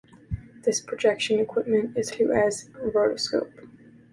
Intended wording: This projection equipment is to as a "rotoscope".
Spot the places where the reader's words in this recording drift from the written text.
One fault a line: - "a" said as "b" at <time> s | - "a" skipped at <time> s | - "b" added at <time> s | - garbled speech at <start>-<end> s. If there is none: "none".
none